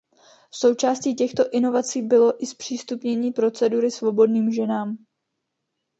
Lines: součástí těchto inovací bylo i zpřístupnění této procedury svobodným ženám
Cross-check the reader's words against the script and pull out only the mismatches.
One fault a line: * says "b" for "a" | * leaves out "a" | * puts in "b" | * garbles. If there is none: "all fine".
* leaves out "této"